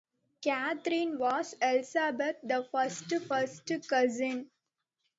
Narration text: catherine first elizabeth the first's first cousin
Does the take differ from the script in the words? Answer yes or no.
yes